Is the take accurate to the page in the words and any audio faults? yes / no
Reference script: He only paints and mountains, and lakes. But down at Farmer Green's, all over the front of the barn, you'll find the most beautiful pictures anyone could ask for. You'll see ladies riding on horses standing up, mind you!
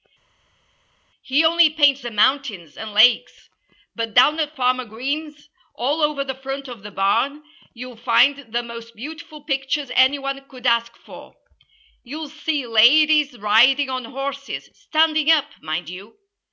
yes